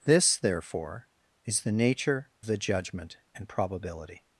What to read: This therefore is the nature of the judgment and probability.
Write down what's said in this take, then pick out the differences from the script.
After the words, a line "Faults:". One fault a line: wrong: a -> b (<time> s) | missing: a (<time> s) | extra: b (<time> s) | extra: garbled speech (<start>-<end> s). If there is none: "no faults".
This therefore is the nature the judgment and probability.
Faults:
missing: of (2.3 s)